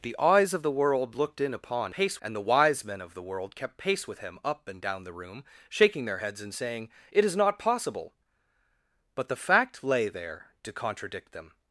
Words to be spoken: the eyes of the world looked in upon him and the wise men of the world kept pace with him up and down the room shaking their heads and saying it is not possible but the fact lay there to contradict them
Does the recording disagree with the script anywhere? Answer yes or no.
yes